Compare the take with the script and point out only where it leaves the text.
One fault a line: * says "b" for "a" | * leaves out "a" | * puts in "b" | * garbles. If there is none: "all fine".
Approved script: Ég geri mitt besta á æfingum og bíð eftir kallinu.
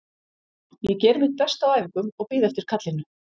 all fine